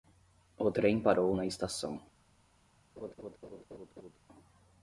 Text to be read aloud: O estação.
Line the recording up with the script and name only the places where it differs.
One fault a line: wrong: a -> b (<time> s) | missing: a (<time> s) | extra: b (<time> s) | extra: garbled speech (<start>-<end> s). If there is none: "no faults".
extra: trem parou na (0.7 s)